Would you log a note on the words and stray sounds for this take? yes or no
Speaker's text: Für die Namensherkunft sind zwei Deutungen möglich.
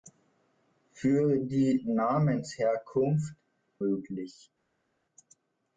yes